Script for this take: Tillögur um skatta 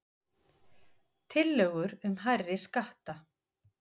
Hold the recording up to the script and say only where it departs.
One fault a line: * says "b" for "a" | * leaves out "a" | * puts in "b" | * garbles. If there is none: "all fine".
* puts in "hærri"